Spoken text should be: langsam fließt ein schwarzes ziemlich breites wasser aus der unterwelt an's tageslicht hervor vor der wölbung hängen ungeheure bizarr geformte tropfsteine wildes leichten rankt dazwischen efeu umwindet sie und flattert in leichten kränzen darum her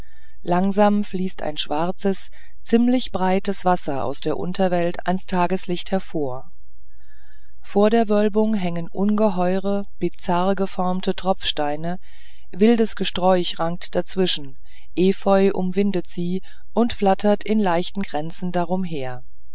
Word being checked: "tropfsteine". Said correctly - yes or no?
yes